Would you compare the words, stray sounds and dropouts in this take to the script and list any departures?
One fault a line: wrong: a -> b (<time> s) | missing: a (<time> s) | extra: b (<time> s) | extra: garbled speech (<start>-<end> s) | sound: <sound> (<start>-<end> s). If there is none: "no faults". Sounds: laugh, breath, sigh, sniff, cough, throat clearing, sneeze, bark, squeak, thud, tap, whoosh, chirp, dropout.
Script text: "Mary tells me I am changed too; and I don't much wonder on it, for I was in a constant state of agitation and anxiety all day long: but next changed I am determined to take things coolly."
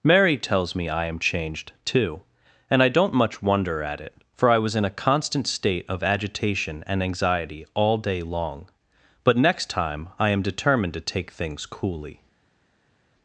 wrong: on -> at (3.8 s)
wrong: changed -> time (9.7 s)